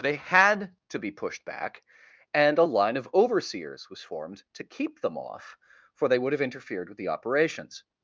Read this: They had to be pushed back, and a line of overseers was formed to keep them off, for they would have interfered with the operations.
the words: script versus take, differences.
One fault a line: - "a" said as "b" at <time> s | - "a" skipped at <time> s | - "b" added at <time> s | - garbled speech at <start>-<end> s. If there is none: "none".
none